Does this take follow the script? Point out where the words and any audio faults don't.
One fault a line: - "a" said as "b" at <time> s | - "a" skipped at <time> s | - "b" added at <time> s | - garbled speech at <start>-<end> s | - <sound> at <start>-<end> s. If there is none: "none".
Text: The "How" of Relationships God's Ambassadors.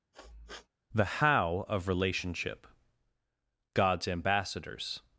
- sniff at 0.1-0.7 s
- "Relationships" said as "Relationship" at 1.9 s